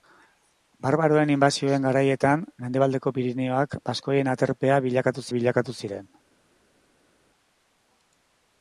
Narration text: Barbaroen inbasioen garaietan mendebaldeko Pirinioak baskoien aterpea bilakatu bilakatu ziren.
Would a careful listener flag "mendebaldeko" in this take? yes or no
no